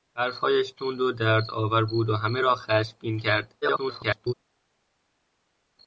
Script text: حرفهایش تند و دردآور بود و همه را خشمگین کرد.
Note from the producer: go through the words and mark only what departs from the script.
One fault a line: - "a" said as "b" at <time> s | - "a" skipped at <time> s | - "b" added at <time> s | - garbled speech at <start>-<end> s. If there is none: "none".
- garbled speech at 3.6-4.3 s